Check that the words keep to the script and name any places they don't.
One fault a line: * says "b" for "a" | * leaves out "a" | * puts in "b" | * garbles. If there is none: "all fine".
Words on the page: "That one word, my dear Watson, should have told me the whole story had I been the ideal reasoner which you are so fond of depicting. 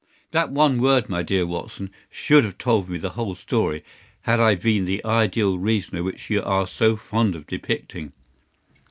all fine